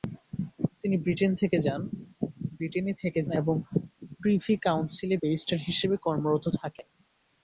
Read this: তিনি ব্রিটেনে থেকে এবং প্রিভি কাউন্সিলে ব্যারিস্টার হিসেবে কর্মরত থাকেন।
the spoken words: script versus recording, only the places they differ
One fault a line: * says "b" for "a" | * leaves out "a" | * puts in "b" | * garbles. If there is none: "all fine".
all fine